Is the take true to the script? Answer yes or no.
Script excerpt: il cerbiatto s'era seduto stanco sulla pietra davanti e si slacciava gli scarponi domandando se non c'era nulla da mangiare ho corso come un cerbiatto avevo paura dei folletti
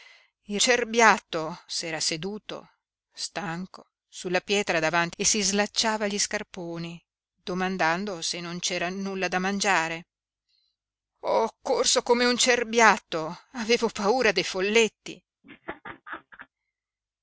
yes